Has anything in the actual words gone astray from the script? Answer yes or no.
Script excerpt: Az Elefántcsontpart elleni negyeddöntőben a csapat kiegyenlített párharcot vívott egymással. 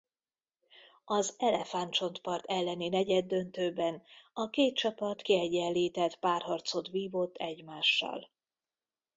yes